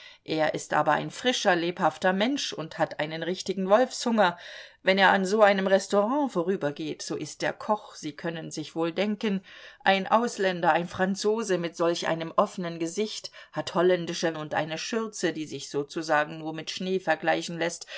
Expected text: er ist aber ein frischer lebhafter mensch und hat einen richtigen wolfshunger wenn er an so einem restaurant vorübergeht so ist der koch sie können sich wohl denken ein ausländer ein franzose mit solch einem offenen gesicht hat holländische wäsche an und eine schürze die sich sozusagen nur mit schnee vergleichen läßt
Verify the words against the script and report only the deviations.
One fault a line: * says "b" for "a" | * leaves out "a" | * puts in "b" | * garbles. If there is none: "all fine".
* leaves out "wäsche an"